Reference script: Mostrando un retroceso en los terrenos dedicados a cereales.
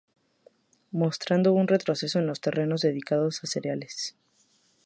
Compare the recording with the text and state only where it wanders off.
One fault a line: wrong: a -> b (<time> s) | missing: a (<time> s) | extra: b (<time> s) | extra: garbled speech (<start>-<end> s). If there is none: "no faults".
no faults